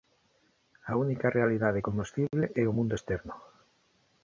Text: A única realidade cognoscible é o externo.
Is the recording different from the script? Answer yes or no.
yes